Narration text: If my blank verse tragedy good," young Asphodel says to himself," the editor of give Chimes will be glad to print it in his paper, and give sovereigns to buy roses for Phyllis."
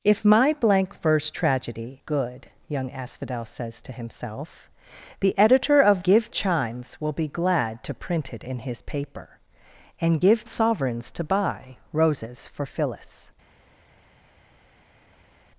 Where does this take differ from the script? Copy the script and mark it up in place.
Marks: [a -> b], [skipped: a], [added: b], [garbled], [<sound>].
If my blank verse tragedy good," young Asphodel says to himself," the editor of give Chimes will be glad to print it in his paper, and give sovereigns to buy roses for Phyllis."